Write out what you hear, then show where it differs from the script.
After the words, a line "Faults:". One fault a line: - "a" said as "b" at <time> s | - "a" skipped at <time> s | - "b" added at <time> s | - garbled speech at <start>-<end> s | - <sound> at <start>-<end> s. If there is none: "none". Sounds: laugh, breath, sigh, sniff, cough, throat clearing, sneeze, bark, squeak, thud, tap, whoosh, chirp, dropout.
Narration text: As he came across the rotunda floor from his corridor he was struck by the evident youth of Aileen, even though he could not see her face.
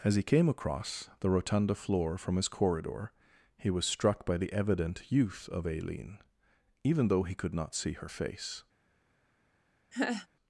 As he came across the rotunda floor from his corridor he was struck by the evident youth of Aileen, even though he could not see her face.
Faults:
- laugh at 9.9-10.3 s